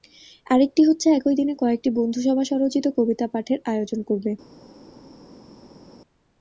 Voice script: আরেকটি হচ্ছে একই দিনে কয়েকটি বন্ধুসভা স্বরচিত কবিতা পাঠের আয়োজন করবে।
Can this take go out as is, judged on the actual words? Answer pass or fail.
pass